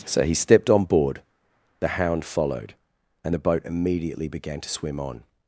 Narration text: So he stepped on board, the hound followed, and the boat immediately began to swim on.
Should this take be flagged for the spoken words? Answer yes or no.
no